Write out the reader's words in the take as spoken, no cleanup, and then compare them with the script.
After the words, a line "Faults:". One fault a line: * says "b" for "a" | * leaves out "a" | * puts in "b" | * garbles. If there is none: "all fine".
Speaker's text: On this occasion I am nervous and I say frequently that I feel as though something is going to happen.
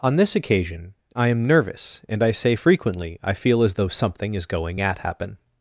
On this occasion I am nervous and I say frequently I feel as though something is going at happen.
Faults:
* leaves out "that"
* says "at" for "to"